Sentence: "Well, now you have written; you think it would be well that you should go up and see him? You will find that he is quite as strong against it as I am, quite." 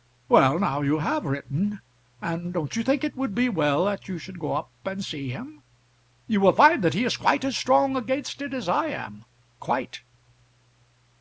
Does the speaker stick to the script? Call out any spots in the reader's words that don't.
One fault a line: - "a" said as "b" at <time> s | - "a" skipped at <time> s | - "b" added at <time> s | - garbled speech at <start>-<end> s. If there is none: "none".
- "and don't" added at 2.2 s